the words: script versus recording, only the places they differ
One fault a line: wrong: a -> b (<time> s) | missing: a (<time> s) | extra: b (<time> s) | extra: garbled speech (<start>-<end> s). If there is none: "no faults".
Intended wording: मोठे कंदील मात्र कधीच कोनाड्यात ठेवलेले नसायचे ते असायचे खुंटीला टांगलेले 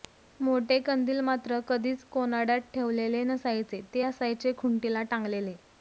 no faults